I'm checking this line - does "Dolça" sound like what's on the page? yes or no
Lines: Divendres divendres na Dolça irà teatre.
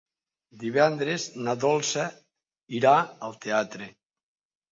yes